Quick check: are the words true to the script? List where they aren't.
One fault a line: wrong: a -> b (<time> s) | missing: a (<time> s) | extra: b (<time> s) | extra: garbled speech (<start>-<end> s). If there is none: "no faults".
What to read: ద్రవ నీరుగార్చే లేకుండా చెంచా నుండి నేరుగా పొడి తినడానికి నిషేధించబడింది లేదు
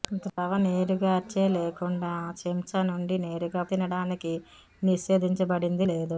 missing: పొడి (3.6 s)